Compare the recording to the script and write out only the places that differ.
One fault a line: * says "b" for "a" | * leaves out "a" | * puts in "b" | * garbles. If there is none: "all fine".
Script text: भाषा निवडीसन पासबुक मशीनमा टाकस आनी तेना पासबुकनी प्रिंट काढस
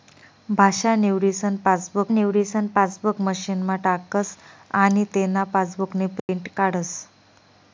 * puts in "निवडीसन पासबुक"